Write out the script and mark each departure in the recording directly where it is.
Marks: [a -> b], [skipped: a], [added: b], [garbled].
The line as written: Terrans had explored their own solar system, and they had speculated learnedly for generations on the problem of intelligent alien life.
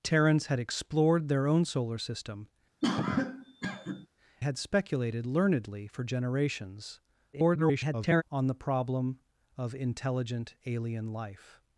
Terrans had explored their own solar system, [skipped: and they] had speculated learnedly for generations [garbled] on the problem of intelligent alien life.